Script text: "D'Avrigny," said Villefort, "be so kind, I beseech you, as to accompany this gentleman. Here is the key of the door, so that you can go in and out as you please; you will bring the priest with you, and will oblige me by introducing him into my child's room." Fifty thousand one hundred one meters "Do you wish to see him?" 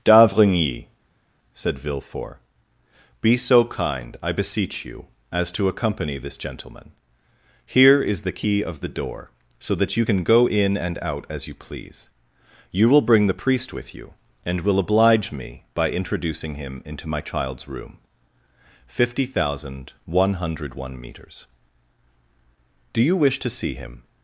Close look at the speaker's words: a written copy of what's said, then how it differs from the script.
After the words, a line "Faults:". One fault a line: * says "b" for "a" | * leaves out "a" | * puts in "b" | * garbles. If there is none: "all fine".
"D'Avrigny," said Villefort, "be so kind, I beseech you, as to accompany this gentleman. Here is the key of the door, so that you can go in and out as you please; you will bring the priest with you, and will oblige me by introducing him into my child's room." Fifty thousand one hundred one meters "Do you wish to see him?"
Faults:
all fine